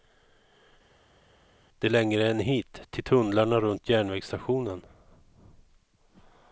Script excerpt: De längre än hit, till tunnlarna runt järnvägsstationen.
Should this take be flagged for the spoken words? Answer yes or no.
no